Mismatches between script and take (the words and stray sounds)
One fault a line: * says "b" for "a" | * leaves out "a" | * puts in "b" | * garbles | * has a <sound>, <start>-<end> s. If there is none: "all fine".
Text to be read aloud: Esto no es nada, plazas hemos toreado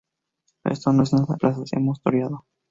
all fine